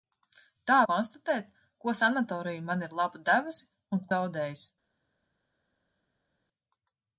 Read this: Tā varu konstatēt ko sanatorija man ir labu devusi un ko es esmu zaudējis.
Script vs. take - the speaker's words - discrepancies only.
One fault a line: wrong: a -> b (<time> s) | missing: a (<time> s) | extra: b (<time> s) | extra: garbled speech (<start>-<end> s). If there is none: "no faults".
missing: varu (0.8 s)
missing: ko es esmu (4.1 s)